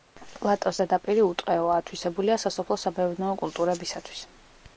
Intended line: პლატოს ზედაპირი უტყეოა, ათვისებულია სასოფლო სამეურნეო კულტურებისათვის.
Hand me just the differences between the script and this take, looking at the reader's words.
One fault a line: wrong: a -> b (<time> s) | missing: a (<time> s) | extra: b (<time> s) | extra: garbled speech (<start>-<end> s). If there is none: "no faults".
no faults